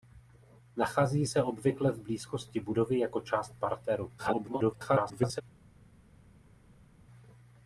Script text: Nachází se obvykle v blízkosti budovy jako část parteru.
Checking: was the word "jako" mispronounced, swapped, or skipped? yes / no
no